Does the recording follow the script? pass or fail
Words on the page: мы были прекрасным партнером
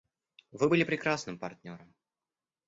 fail